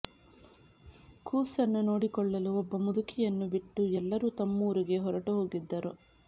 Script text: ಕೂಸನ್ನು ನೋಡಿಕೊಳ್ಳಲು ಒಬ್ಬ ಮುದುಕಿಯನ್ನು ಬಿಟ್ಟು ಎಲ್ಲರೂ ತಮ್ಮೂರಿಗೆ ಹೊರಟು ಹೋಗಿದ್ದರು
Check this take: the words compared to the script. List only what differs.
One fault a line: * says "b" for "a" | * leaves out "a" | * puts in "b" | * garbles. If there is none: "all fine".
all fine